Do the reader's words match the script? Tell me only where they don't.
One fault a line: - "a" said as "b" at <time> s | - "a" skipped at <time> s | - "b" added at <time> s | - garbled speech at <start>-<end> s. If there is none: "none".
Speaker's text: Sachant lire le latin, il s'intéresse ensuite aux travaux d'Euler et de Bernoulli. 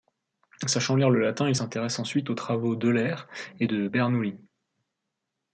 none